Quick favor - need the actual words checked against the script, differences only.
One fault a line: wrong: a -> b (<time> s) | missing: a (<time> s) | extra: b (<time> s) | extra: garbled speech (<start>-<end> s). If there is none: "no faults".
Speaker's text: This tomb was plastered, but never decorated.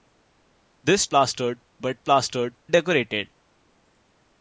missing: tomb was (1.1 s)
wrong: never -> plastered (2.0 s)